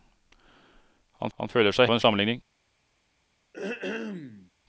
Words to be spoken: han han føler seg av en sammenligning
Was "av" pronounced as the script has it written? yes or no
yes